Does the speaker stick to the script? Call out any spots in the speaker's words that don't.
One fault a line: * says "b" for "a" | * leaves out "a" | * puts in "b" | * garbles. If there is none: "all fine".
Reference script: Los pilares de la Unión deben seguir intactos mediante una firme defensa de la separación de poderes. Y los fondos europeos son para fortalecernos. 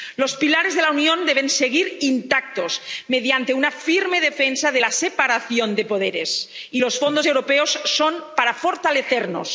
all fine